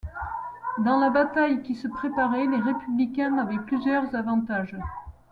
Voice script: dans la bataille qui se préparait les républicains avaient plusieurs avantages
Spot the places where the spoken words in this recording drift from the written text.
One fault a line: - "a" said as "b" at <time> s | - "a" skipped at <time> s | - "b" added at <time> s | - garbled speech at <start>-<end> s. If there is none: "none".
none